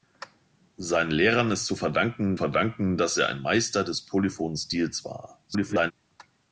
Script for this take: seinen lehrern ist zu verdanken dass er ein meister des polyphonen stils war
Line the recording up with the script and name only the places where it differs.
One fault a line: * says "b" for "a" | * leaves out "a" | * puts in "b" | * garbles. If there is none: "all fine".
* puts in "verdanken"
* garbles